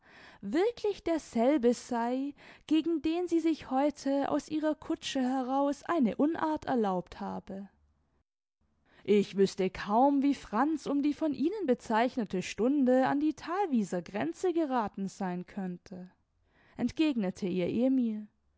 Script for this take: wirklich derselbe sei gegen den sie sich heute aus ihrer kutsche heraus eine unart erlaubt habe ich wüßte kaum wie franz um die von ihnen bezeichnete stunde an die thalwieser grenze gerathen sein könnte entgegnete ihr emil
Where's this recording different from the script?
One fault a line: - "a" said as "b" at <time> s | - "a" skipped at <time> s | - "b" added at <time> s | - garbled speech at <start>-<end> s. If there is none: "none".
none